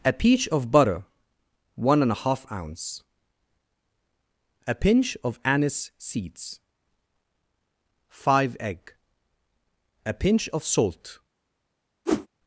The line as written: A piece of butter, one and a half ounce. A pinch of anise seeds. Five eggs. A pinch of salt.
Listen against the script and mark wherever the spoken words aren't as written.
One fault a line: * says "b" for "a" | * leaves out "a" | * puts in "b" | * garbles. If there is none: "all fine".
* says "peach" for "piece"
* says "egg" for "eggs"